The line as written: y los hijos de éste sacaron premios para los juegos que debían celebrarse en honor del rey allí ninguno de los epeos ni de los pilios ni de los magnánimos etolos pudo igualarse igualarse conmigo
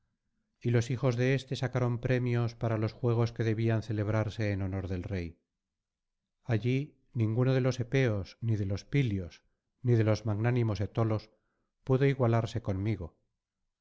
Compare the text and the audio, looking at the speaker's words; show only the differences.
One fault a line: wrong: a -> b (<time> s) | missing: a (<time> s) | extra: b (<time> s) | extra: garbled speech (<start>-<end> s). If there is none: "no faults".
missing: igualarse (12.6 s)